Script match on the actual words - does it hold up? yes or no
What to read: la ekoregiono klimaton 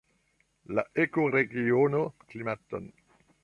yes